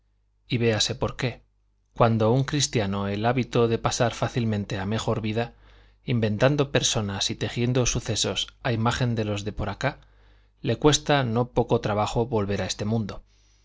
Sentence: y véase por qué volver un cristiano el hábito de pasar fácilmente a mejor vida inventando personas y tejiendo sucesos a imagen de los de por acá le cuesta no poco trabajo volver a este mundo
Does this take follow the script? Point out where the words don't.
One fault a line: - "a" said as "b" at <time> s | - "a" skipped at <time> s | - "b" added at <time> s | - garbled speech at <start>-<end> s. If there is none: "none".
- "volver" said as "cuando" at 1.9 s